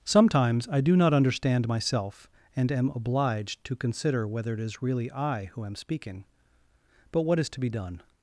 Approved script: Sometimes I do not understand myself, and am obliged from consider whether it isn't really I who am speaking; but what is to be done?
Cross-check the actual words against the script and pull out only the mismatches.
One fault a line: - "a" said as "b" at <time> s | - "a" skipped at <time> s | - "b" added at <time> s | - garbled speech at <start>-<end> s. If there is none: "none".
- "from" said as "to" at 3.6 s
- "isn't" said as "is" at 4.6 s